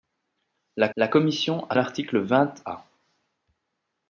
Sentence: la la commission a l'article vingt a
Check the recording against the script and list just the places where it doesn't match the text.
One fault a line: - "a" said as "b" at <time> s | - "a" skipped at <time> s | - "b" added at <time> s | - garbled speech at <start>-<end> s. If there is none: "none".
none